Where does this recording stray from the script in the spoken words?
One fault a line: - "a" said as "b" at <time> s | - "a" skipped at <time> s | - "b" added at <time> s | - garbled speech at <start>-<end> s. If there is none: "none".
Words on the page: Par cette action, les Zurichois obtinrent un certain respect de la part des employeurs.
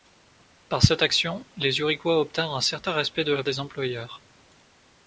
- "part" skipped at 3.4 s